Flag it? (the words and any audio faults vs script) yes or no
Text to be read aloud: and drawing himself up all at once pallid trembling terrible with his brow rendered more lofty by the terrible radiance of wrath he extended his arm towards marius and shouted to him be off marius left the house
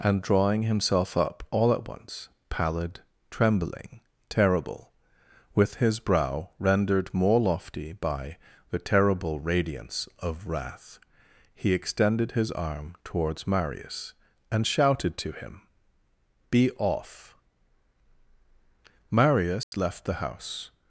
yes